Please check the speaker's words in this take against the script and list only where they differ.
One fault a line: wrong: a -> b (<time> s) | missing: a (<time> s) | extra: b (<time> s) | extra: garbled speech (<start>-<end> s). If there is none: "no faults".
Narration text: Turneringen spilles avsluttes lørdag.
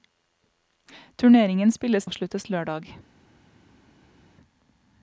no faults